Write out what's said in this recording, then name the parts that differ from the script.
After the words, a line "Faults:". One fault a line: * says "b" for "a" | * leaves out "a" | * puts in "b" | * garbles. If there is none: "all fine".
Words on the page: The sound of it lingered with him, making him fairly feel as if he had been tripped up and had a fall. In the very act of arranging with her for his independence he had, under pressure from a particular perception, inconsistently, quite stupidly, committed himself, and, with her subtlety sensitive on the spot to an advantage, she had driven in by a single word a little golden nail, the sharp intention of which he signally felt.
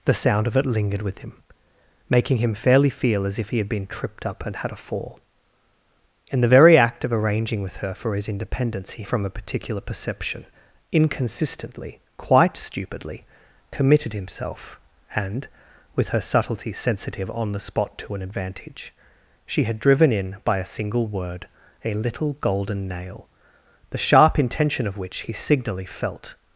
The sound of it lingered with him, making him fairly feel as if he had been tripped up and had a fall. In the very act of arranging with her for his independence he from a particular perception, inconsistently, quite stupidly, committed himself, and, with her subtlety sensitive on the spot to an advantage, she had driven in by a single word a little golden nail, the sharp intention of which he signally felt.
Faults:
* leaves out "had under pressure"